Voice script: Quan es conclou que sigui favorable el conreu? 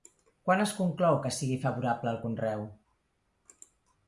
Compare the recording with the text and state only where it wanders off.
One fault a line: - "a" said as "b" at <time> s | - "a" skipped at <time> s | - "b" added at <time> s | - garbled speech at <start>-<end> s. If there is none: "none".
none